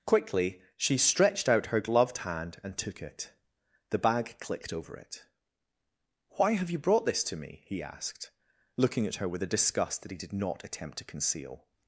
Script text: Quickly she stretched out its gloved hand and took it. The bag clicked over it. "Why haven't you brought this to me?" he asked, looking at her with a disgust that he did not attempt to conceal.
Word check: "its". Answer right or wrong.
wrong